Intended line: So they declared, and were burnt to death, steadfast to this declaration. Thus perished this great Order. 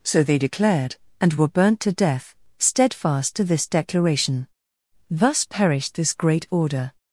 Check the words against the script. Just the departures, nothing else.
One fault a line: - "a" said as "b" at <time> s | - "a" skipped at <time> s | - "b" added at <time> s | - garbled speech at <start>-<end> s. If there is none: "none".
none